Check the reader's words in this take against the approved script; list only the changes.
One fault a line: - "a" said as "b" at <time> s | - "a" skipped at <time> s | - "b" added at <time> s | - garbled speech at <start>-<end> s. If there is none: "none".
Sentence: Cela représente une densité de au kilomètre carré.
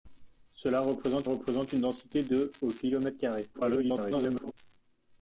- "représente" added at 1.2 s
- garbled speech at 3.5-4.5 s